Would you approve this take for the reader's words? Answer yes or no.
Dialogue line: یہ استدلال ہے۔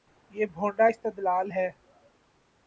no